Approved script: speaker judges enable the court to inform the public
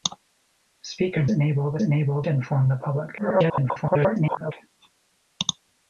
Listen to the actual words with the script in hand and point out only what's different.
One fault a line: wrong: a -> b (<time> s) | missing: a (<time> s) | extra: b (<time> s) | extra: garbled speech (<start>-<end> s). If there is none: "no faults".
missing: judges (1.2 s)
wrong: court -> enable (1.8 s)
extra: garbled speech (3.2-4.5 s)